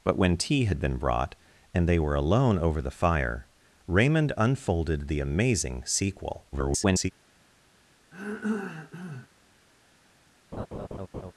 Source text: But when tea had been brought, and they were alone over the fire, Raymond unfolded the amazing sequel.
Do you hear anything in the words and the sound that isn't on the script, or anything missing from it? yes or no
yes